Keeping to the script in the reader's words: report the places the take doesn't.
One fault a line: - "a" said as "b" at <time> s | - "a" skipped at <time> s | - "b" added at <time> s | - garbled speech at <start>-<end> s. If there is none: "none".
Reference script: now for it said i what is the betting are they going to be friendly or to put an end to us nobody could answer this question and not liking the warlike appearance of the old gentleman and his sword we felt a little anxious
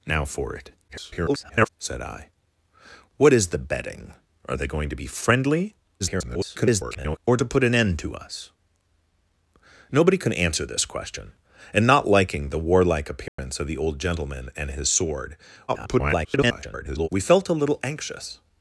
- garbled speech at 0.9-1.7 s
- garbled speech at 6.0-7.2 s
- garbled speech at 15.7-17.1 s